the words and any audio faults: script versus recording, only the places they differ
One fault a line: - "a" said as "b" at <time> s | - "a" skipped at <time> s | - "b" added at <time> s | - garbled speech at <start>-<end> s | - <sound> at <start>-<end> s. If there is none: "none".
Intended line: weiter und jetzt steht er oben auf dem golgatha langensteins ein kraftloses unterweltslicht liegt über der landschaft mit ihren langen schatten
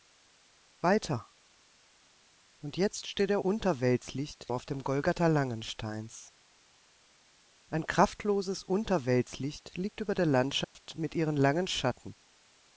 - "oben" said as "unterweltslicht" at 3.4 s
- dropout at 10.6-10.8 s